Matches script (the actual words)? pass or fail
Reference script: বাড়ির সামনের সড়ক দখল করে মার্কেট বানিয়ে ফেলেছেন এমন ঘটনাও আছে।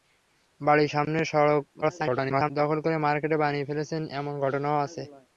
fail